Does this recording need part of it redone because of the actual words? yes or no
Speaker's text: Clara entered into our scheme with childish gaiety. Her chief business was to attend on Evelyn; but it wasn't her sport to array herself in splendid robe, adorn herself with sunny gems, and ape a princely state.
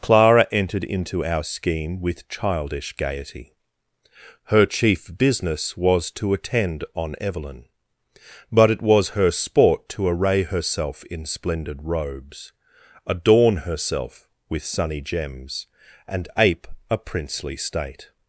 yes